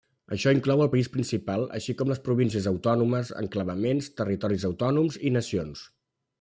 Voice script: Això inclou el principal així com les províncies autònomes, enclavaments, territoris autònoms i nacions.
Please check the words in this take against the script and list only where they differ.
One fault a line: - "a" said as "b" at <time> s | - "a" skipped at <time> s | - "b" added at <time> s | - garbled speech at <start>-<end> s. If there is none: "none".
- "país" added at 0.9 s